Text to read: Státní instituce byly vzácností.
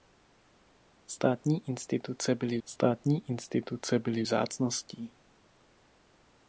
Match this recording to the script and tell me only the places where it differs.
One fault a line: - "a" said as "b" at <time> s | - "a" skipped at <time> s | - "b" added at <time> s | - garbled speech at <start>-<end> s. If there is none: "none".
- "státní instituce byly" added at 2.7 s